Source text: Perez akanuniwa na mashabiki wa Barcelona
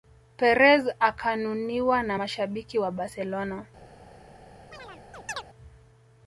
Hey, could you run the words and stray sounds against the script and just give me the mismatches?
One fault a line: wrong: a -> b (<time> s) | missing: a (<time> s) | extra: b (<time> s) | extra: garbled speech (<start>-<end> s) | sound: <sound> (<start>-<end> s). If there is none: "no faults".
sound: chirp (4.7-5.4 s)